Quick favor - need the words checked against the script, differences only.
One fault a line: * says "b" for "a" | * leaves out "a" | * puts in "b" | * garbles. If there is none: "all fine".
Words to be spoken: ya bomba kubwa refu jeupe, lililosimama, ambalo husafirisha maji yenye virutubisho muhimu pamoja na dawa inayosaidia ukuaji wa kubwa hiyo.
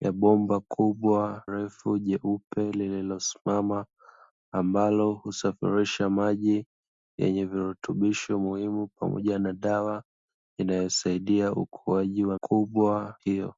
all fine